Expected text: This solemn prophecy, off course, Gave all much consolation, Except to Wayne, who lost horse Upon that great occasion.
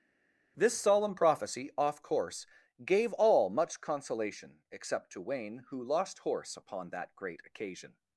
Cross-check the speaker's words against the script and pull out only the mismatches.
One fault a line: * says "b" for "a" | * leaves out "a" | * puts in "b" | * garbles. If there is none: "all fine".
all fine